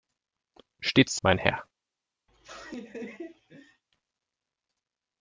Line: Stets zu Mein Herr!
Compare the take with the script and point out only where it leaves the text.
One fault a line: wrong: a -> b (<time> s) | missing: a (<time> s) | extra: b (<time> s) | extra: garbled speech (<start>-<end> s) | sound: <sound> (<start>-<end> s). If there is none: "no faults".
sound: laugh (2.3-3.8 s)